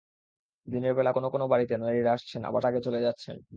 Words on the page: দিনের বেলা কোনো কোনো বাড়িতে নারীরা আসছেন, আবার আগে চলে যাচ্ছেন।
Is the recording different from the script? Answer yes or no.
no